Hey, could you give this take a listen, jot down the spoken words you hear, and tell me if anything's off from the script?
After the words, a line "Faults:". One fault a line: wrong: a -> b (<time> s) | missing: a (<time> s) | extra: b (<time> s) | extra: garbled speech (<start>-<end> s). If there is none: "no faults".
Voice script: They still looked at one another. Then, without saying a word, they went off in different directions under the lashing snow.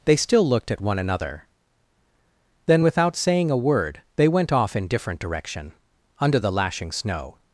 They still looked at one another. Then, without saying a word, they went off in different direction under the lashing snow.
Faults:
wrong: directions -> direction (5.2 s)